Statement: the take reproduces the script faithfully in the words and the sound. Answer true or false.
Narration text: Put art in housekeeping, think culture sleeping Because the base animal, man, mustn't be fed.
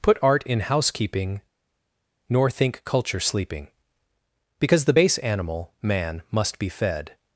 false